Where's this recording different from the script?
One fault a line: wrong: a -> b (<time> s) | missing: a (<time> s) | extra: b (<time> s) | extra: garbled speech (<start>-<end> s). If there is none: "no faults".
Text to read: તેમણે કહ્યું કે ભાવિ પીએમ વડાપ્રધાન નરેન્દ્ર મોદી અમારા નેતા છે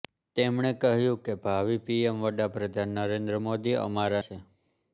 missing: નેતા (4.2 s)